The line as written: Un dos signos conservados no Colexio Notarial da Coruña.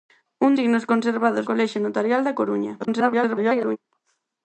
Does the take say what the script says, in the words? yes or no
no